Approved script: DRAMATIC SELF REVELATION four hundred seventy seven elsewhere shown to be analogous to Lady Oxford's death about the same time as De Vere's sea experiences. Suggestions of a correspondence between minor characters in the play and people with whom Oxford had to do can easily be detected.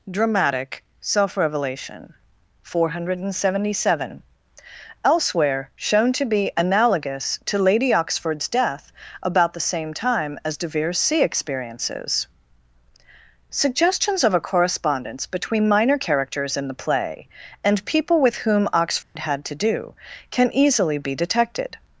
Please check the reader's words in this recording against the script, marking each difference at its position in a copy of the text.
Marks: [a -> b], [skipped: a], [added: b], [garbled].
DRAMATIC SELF REVELATION four hundred seventy seven elsewhere shown to be analogous to Lady Oxford's death about the same time as De Vere's sea experiences. Suggestions of a correspondence between minor characters in the play and people with whom Oxford had to do can easily be detected.